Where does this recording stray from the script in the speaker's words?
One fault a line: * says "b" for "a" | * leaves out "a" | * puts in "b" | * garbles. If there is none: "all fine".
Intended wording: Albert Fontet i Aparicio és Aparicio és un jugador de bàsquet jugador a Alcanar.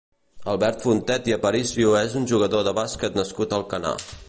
* leaves out "Aparicio és"
* says "nascut" for "jugador"